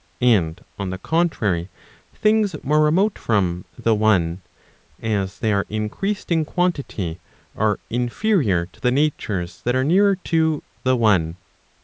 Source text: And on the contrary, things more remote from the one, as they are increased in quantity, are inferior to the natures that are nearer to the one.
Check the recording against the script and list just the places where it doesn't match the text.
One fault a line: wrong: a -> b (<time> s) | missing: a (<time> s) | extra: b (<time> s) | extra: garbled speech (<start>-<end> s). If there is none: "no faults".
no faults